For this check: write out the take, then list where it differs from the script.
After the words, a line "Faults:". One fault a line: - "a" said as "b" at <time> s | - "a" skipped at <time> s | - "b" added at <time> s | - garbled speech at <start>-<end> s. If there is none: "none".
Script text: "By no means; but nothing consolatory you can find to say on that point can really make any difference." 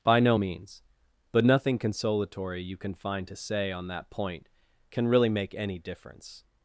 "By no means; but nothing consolatory you can find to say on that point can really make any difference."
Faults:
none